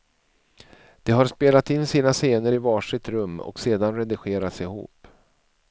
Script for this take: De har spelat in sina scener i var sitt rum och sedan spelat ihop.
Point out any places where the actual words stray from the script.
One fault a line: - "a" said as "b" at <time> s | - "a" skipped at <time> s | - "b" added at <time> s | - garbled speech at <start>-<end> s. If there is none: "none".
- "spelat" said as "redigerats" at 4.0 s